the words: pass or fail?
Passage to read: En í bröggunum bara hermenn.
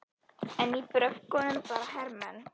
pass